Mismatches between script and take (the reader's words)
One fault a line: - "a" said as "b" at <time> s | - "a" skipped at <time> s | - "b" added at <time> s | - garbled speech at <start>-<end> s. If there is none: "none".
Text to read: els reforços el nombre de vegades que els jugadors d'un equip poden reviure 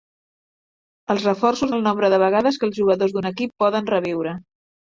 none